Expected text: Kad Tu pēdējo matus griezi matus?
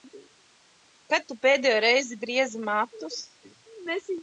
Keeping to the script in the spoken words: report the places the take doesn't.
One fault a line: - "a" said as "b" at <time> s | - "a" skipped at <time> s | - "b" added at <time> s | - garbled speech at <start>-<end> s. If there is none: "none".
- "matus" said as "reizi" at 1.9 s